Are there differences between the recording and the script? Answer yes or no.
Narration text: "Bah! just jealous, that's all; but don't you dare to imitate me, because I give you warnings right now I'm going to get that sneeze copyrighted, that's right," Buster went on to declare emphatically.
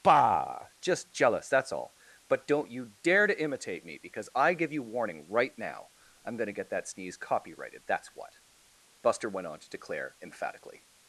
yes